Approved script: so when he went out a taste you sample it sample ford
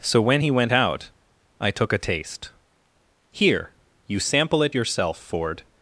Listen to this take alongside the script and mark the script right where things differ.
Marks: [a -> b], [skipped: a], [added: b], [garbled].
so when he went out [added: i took] a taste [added: here] you sample it [sample -> yourself] ford